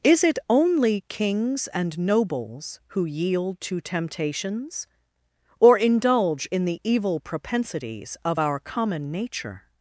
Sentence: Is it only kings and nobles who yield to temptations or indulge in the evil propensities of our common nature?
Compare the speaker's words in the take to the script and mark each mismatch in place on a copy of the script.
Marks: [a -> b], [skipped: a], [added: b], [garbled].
Is it only kings and nobles who yield to temptations or indulge in the evil propensities of our common nature?